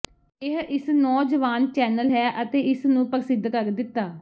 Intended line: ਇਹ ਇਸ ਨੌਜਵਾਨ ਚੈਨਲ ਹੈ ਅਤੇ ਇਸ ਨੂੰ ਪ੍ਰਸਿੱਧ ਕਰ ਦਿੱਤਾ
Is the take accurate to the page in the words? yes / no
yes